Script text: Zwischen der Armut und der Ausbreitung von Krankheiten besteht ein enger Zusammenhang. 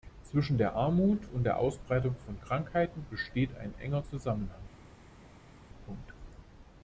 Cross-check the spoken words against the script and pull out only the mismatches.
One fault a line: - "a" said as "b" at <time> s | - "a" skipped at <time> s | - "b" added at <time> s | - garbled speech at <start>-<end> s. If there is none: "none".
none